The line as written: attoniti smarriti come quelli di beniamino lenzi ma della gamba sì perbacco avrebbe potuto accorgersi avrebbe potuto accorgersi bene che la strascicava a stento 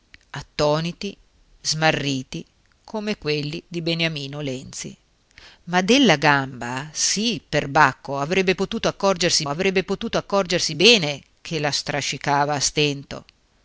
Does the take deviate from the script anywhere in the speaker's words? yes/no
no